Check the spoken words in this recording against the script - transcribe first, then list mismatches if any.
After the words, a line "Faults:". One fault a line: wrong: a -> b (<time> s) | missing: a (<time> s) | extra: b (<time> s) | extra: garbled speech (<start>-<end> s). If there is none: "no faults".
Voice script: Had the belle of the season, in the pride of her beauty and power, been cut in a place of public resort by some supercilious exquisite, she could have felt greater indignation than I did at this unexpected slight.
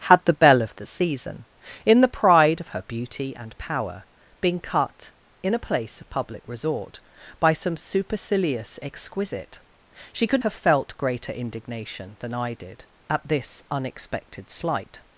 Had the belle of the season, in the pride of her beauty and power, been cut in a place of public resort by some supercilious exquisite, she could have felt greater indignation than I did at this unexpected slight.
Faults:
no faults